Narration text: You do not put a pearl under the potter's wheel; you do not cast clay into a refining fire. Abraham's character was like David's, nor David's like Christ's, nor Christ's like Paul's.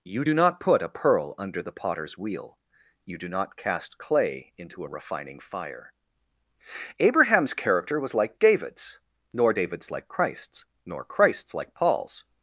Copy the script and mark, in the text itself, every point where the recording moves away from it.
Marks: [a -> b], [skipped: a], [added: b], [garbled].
You do not put a pearl under the potter's wheel; you do not cast clay into a refining fire. Abraham's character was like David's, nor David's like Christ's, nor Christ's like Paul's.